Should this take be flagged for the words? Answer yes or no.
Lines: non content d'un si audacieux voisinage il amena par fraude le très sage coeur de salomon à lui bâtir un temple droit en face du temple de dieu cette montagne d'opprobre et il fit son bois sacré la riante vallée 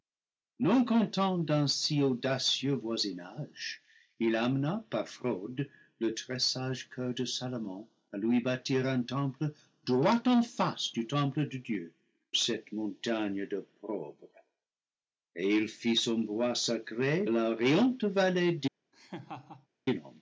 no